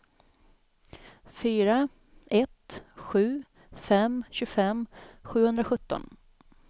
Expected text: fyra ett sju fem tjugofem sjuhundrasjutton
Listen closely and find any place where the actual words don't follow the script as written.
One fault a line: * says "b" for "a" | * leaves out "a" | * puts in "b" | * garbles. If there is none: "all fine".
all fine